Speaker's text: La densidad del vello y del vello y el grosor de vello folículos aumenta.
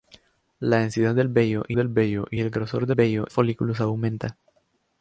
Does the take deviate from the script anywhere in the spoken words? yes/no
no